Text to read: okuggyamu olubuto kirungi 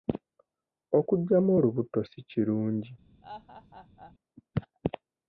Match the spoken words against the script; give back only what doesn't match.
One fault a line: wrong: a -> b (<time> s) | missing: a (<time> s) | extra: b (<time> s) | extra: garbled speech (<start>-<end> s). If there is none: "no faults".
extra: si (2.1 s)